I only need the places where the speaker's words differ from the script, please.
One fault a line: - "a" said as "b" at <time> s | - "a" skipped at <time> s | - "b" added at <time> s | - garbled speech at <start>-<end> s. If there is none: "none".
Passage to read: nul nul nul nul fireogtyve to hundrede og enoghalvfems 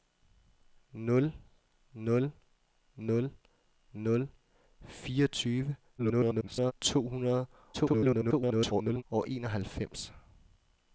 - garbled speech at 6.0-6.7 s
- garbled speech at 7.7-9.0 s